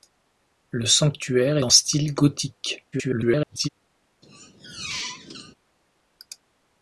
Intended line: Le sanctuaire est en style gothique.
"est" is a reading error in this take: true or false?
true